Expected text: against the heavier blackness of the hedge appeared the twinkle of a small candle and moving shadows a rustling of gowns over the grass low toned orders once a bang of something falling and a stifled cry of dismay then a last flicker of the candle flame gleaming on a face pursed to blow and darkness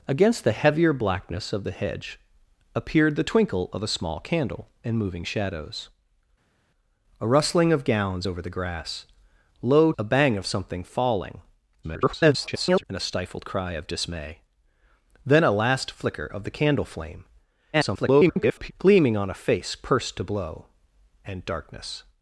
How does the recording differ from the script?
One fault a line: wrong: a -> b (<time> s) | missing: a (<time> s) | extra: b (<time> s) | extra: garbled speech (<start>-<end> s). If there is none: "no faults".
missing: toned orders once (9.9 s)
extra: garbled speech (11.8-12.8 s)
extra: garbled speech (17.7-18.7 s)